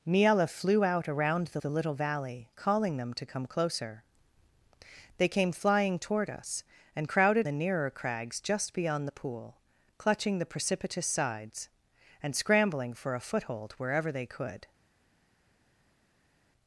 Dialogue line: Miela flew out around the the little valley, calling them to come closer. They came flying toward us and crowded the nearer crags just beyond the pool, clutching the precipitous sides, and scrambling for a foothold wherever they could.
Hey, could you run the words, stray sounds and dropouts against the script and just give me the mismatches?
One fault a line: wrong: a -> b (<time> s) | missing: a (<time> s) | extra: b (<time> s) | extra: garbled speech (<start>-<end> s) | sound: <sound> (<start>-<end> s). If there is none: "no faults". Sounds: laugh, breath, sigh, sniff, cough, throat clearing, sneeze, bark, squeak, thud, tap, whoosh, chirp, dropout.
no faults